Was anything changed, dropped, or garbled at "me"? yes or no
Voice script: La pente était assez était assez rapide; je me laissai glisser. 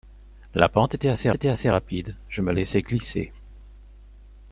no